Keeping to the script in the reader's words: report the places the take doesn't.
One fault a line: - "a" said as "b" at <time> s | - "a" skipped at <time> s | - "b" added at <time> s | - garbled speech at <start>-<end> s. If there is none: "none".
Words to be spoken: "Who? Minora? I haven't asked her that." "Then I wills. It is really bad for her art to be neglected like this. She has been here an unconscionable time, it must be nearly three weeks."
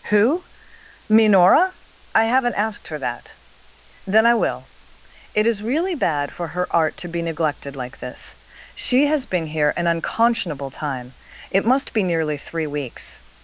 - "wills" said as "will" at 4.3 s